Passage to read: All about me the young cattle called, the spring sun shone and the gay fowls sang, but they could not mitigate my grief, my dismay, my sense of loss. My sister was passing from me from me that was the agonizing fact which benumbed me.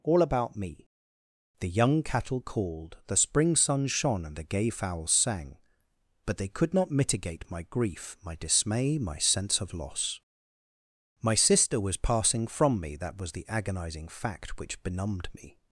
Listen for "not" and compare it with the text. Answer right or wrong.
right